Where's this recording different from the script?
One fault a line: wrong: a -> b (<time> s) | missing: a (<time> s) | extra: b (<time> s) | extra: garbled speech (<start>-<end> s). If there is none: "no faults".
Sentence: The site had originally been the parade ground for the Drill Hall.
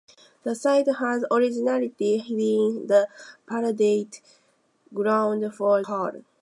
missing: the Drill (5.8 s)